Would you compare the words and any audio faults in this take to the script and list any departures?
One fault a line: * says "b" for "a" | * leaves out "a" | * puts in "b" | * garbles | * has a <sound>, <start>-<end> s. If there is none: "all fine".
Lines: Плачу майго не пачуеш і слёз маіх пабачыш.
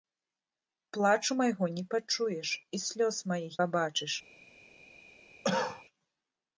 * has a cough, 5.4-5.8 s